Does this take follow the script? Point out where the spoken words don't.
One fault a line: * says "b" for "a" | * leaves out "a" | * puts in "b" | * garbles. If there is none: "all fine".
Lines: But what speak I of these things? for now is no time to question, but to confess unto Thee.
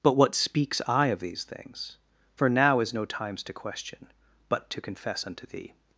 * says "speaks" for "speak"
* says "times" for "time"